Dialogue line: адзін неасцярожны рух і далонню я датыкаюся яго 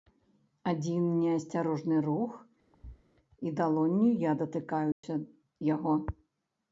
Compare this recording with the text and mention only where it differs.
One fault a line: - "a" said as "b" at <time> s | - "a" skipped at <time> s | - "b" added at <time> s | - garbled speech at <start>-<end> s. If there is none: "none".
none